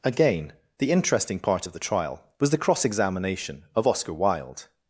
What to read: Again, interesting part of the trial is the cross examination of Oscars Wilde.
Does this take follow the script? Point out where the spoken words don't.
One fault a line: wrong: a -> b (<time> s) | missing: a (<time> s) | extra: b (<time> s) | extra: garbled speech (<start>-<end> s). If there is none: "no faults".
extra: the (0.8 s)
wrong: is -> was (2.4 s)
wrong: Oscars -> Oscar (3.9 s)